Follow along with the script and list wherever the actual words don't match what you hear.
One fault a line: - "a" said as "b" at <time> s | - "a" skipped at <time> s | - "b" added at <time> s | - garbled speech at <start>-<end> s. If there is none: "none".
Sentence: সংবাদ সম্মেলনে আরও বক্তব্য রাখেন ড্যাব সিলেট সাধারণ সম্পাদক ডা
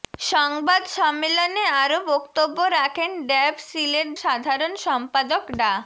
none